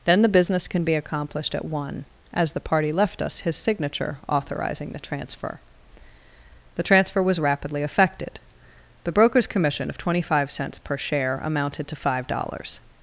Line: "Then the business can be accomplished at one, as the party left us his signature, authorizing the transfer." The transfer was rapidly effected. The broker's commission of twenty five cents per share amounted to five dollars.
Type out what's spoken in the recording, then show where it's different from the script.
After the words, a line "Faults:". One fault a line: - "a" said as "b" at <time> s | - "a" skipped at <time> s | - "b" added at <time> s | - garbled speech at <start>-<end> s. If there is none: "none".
"Then the business can be accomplished at one, as the party left us his signature, authorizing the transfer." The transfer was rapidly effected. The broker's commission of twenty five cents per share amounted to five dollars.
Faults:
none